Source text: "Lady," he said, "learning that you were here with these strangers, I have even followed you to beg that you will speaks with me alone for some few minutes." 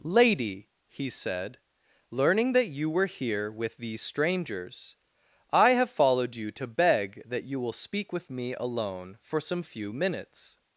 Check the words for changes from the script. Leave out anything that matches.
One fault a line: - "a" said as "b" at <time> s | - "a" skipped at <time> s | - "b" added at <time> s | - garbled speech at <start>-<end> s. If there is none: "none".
- "even" skipped at 5.9 s
- "speaks" said as "speak" at 7.7 s